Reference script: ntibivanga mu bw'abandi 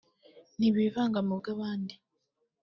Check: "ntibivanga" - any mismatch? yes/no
no